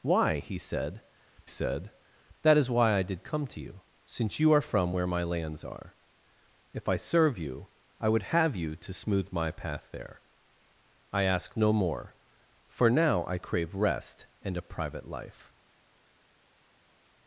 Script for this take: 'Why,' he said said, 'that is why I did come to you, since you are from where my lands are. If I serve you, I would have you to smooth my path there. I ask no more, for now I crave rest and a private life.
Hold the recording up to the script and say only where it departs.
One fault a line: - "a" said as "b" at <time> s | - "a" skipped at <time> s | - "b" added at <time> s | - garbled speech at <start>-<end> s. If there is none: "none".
none